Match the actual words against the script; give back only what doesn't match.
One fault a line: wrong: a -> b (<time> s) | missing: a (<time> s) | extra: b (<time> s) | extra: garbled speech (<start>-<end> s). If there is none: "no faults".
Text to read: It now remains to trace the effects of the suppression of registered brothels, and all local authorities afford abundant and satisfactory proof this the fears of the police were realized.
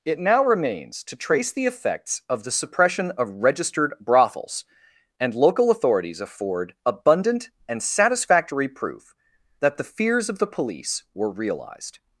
missing: all (5.3 s)
wrong: this -> that (9.6 s)